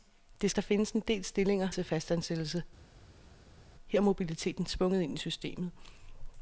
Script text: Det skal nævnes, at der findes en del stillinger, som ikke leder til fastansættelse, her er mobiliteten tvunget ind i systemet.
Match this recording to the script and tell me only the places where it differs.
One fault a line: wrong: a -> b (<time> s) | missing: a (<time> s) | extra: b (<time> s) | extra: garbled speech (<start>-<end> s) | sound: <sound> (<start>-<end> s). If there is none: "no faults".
missing: skal nævnes at (0.5 s)
missing: som ikke leder (1.7 s)